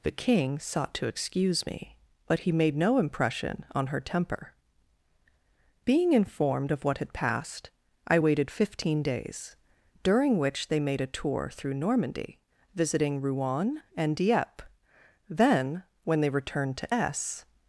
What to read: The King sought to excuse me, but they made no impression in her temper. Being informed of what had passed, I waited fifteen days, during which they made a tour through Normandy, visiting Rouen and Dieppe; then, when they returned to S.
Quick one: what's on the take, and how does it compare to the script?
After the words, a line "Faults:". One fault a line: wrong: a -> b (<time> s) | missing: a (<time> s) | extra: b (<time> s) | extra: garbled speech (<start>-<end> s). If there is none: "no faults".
The King sought to excuse me, but he made no impression on her temper. Being informed of what had passed, I waited fifteen days, during which they made a tour through Normandy, visiting Rouen and Dieppe; then, when they returned to S.
Faults:
wrong: they -> he (2.4 s)
wrong: in -> on (3.7 s)